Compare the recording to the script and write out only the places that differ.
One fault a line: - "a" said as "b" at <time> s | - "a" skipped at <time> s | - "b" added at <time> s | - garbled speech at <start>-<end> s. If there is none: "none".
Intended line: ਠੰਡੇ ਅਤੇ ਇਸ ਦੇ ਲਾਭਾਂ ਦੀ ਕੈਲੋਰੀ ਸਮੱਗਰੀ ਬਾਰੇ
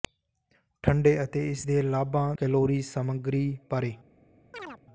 - "ਦੀ" skipped at 2.3 s